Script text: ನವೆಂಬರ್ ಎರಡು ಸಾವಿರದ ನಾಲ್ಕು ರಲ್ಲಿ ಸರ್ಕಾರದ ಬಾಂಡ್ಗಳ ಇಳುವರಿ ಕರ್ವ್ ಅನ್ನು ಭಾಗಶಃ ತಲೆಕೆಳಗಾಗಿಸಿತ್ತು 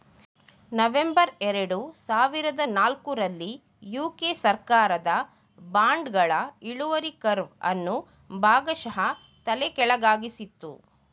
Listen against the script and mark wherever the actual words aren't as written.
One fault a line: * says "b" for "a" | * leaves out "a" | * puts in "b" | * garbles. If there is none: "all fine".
* puts in "ಯು.ಕೆ"